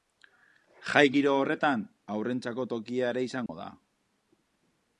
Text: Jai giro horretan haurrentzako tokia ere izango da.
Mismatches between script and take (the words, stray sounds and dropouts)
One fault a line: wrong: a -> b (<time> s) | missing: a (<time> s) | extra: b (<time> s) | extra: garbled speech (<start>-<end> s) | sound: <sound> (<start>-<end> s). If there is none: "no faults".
sound: dropout (3.5-3.5 s)